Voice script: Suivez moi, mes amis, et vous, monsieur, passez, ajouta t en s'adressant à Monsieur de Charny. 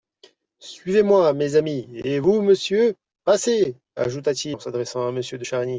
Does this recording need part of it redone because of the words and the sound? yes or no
no